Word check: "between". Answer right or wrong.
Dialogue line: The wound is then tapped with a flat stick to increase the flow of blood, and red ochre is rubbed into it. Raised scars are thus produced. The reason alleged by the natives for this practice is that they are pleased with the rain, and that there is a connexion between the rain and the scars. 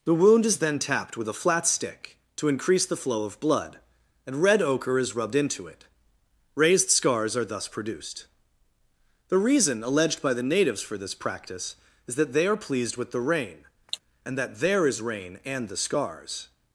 wrong